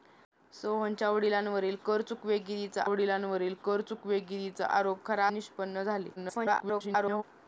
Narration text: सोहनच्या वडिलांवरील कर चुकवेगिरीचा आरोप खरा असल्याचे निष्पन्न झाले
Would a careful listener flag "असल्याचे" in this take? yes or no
yes